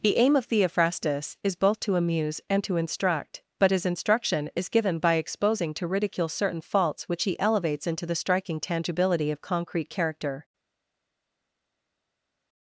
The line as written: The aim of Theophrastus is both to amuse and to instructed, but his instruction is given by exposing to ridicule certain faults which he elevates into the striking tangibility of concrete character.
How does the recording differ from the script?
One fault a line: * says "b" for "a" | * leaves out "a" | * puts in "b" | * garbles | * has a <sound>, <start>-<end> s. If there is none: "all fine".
* says "instruct" for "instructed"